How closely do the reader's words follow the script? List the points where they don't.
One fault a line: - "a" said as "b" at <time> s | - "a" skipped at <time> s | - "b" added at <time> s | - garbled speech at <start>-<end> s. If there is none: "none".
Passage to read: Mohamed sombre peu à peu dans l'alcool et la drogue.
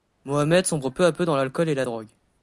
none